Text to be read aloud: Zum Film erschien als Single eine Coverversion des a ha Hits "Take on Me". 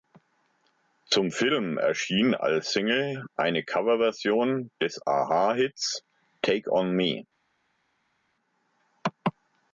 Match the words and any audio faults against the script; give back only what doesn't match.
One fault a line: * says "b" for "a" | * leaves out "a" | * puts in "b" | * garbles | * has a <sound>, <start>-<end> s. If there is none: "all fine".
all fine